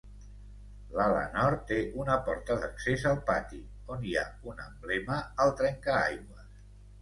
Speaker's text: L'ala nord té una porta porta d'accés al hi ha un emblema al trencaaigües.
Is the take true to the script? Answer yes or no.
no